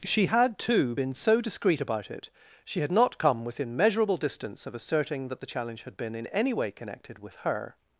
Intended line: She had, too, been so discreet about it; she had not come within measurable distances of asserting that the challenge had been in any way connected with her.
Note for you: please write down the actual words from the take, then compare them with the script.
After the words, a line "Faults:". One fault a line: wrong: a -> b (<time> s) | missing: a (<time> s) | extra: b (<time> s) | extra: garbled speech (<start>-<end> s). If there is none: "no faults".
She had, too, been so discreet about it; she had not come within measurable distance of asserting that the challenge had been in any way connected with her.
Faults:
wrong: distances -> distance (4.2 s)